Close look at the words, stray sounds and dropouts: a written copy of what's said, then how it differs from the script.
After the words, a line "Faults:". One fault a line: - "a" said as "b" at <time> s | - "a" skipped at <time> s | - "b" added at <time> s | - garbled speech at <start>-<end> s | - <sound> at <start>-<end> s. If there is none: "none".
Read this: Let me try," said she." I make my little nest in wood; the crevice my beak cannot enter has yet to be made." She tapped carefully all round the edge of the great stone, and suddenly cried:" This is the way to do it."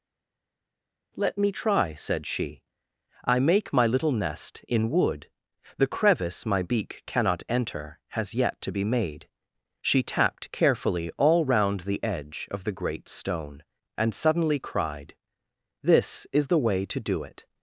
Let me try," said she." I make my little nest in wood; the crevice my beak cannot enter has yet to be made." She tapped carefully all round the edge of the great stone, and suddenly cried:" This is the way to do it."
Faults:
none